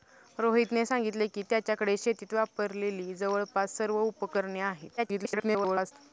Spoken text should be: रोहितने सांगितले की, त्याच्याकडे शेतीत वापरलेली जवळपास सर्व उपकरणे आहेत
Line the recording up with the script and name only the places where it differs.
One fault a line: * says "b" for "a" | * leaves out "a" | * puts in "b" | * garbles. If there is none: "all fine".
* garbles